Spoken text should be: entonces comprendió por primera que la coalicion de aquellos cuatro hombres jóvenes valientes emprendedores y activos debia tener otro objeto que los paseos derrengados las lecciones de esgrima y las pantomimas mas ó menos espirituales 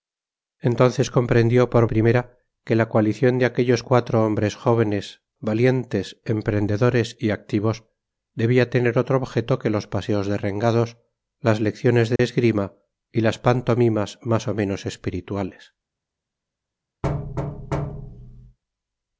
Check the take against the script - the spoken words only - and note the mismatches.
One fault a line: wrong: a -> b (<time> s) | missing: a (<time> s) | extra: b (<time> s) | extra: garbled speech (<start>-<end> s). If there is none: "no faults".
no faults